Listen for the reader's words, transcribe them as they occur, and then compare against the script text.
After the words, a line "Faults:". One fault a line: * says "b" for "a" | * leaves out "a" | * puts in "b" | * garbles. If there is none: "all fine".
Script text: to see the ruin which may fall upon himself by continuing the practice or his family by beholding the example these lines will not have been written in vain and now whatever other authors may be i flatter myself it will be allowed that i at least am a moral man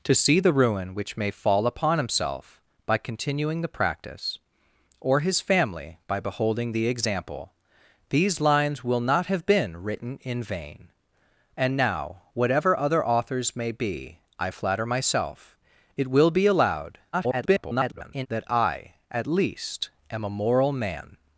to see the ruin which may fall upon himself by continuing the practice or his family by beholding the example these lines will not have been written in vain and now whatever other authors may be i flatter myself it will be allowed [garbled] that i at least am a moral man
Faults:
* garbles